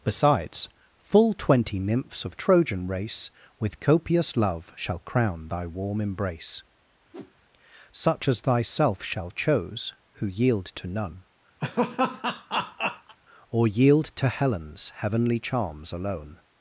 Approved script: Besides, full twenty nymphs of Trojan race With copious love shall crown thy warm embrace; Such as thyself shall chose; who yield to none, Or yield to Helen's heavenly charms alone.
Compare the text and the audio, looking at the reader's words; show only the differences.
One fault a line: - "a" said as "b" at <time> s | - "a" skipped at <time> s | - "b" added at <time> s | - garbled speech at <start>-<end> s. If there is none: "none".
none